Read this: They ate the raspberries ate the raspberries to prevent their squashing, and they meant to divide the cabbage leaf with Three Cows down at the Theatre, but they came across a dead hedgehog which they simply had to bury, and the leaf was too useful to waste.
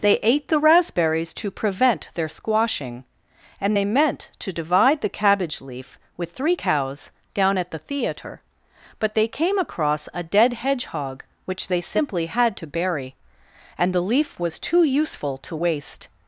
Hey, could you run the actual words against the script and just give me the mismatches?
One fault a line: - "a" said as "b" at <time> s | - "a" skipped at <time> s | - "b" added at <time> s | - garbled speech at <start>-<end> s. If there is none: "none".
- "ate the raspberries" skipped at 1.3 s